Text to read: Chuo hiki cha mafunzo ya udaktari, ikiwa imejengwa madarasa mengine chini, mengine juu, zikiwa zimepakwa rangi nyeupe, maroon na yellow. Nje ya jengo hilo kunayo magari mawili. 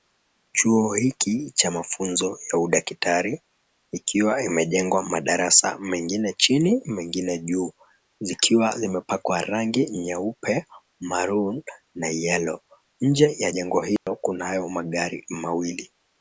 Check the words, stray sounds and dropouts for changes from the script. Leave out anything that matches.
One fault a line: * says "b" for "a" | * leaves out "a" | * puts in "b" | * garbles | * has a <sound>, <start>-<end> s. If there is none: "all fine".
* has a dropout, 14.0-14.1 s